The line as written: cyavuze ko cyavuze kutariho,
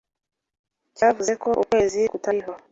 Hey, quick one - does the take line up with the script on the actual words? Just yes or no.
no